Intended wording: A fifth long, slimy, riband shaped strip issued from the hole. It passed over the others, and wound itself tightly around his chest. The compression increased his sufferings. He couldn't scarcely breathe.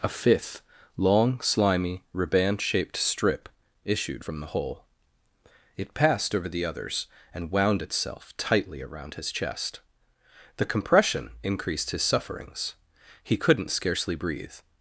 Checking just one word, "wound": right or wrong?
right